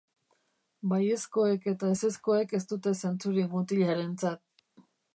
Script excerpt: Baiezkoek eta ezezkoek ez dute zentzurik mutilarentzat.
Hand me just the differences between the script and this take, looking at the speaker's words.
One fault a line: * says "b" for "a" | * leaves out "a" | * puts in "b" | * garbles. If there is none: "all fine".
all fine